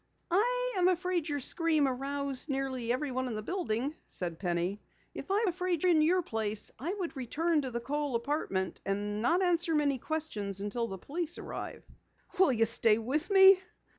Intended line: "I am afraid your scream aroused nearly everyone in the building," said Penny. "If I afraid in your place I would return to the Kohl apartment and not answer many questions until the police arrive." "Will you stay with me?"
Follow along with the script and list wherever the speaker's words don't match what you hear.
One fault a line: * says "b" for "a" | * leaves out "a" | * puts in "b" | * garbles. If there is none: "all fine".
all fine